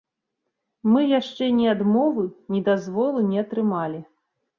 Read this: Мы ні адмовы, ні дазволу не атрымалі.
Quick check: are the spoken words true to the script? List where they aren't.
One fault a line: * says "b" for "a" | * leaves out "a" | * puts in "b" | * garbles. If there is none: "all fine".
* puts in "яшчэ"